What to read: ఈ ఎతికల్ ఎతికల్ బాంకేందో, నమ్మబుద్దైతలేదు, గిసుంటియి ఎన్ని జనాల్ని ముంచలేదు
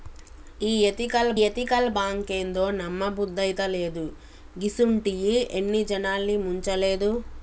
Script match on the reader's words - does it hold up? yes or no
yes